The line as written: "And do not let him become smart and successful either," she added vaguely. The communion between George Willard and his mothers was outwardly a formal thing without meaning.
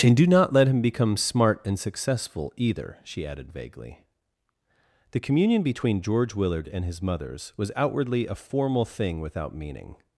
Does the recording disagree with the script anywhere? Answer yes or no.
no